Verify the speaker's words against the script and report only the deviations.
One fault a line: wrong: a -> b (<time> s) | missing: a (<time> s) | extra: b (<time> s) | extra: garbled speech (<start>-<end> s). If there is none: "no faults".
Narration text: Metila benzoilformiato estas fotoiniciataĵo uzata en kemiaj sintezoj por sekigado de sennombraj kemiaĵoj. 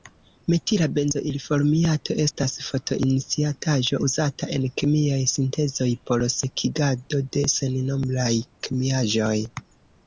no faults